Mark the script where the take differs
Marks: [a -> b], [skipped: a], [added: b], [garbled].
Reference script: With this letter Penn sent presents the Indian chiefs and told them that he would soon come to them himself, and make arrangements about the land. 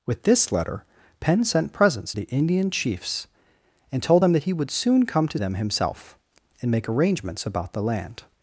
With this letter Penn sent presents the Indian chiefs and told them that he would soon come to them himself, and make arrangements about the land.